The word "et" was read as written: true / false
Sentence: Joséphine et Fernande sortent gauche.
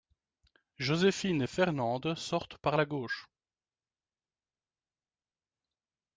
true